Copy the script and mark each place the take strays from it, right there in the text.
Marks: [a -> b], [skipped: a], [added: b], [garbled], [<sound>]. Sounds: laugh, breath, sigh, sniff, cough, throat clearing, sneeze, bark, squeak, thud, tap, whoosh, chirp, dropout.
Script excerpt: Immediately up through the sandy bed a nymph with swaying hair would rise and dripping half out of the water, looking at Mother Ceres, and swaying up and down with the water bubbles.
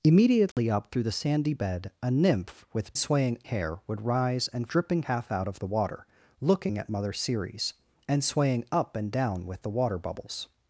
Immediately [dropout] up through the sandy bed a nymph with swaying hair would rise and dripping half out of the water, looking at Mother Ceres, and swaying up and down with the water bubbles.